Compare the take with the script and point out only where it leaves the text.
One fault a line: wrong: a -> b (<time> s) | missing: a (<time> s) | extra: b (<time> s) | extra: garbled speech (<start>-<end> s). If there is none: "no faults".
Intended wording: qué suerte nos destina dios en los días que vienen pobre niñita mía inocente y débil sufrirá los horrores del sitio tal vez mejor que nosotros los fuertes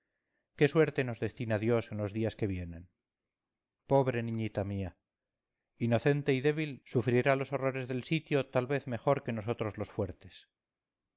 no faults